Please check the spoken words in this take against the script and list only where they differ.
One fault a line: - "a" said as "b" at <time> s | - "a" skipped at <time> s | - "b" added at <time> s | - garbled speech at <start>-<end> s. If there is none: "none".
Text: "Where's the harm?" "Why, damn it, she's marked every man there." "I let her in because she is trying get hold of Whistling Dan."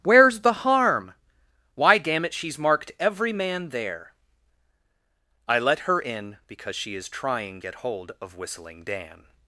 none